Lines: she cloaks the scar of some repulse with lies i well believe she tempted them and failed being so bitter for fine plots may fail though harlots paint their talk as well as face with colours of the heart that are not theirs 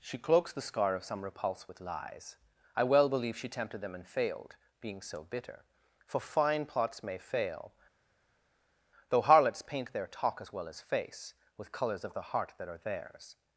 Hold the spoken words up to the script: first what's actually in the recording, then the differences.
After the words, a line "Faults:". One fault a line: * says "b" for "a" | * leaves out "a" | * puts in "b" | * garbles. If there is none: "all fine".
she cloaks the scar of some repulse with lies i well believe she tempted them and failed being so bitter for fine plots may fail though harlots paint their talk as well as face with colours of the heart that are theirs
Faults:
* leaves out "not"